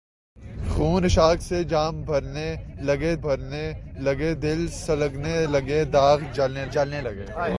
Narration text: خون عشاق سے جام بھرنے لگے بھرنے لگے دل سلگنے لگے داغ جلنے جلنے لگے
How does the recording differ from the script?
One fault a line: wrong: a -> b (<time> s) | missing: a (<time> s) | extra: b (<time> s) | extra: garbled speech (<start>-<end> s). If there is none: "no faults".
no faults